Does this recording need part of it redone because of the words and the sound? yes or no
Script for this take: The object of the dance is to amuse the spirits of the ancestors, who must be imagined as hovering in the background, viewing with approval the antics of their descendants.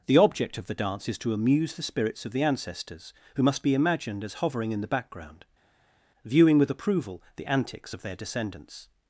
no